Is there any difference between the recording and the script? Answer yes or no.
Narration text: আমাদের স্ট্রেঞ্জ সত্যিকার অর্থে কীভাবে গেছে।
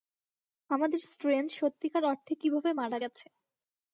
yes